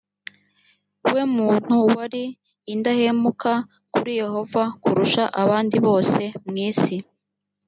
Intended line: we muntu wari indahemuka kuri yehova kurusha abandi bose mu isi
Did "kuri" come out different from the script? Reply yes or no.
no